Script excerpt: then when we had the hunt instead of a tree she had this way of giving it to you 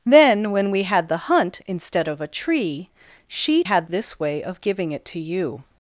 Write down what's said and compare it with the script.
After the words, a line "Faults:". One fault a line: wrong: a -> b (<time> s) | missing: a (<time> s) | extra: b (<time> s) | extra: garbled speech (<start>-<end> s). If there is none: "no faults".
then when we had the hunt instead of a tree she had this way of giving it to you
Faults:
no faults